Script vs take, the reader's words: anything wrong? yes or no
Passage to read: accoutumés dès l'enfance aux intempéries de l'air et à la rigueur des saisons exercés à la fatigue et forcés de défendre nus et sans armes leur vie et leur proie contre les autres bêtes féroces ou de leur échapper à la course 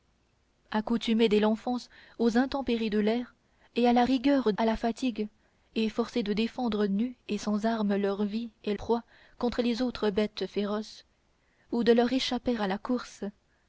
yes